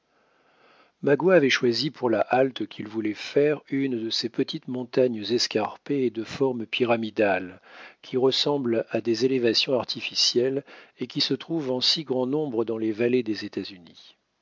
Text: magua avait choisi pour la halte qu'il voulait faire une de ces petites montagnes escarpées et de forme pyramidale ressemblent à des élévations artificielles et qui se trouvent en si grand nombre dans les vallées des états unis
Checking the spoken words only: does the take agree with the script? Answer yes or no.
no